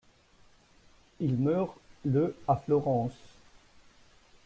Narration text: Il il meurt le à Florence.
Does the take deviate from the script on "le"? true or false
false